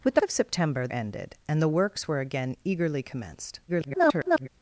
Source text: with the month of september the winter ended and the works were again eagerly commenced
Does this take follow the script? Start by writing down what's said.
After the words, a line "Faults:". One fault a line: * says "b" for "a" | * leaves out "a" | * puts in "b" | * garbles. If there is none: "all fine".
with the of september ended and the works were again eagerly commenced [garbled]
Faults:
* leaves out "month"
* leaves out "the winter"
* garbles